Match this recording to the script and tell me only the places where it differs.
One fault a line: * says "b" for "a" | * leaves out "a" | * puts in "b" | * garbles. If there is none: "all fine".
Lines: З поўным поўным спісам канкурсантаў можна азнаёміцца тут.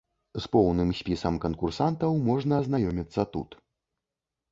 * leaves out "поўным"